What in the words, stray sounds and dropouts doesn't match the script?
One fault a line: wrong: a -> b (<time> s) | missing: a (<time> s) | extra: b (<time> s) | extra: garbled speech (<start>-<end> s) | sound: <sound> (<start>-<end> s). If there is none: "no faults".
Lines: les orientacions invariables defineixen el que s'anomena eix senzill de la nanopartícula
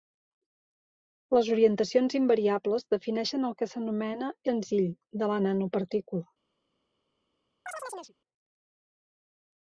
missing: eix (4.3 s)
sound: chirp (7.7-8.1 s)